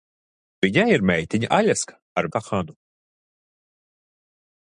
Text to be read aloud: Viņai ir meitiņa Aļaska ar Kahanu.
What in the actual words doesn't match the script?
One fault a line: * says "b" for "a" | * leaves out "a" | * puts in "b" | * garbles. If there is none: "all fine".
all fine